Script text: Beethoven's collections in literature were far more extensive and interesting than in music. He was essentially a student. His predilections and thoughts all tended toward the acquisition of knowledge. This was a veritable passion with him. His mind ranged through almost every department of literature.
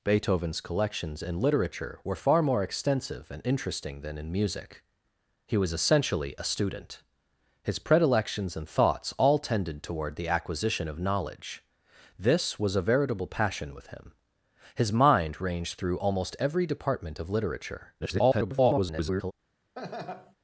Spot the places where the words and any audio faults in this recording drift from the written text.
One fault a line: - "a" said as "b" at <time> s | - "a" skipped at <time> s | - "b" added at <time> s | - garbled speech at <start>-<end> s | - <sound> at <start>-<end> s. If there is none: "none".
- garbled speech at 18.0-19.3 s
- laugh at 19.8-20.4 s